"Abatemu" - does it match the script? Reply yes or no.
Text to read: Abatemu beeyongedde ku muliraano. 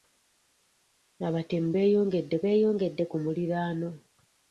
yes